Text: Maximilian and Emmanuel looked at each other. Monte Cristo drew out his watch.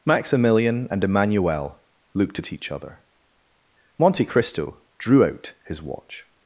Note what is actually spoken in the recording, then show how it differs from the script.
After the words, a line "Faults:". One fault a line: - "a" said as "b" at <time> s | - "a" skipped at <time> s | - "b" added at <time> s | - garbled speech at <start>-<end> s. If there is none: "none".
Maximilian and Emmanuel looked at each other. Monte Cristo drew out his watch.
Faults:
none